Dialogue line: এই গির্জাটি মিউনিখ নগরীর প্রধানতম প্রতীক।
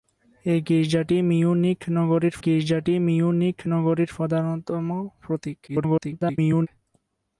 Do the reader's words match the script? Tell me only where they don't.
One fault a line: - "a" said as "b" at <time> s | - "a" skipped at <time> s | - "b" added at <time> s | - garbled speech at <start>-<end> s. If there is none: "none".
- "গির্জাটি মিউনিখ নগরীর" added at 2.4 s
- garbled speech at 5.7-6.7 s